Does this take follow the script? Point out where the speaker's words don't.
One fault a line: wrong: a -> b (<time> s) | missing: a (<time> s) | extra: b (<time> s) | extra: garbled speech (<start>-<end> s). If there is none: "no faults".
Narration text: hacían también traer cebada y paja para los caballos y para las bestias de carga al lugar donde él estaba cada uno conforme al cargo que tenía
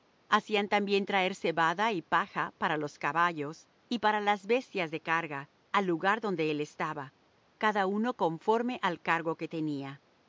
no faults